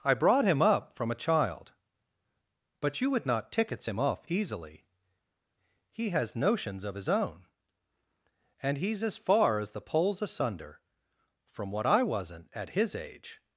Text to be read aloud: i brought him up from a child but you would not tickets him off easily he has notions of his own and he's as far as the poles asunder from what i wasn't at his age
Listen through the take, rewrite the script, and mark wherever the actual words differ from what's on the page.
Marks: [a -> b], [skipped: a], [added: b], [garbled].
i brought him up from a child but you would not tickets him off easily he has notions of his own and he's as far as the poles asunder from what i wasn't at his age